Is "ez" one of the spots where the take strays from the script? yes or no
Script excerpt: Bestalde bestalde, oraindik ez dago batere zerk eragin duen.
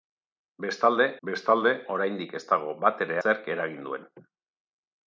no